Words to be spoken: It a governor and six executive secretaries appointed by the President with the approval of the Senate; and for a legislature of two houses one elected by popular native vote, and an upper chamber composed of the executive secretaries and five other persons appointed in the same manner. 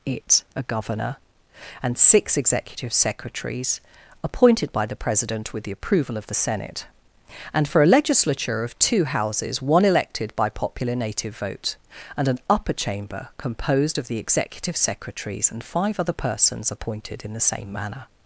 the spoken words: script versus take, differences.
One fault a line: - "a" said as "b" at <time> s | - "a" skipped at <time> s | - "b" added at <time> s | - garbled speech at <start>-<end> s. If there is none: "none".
none